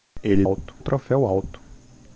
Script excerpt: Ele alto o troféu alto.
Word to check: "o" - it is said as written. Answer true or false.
true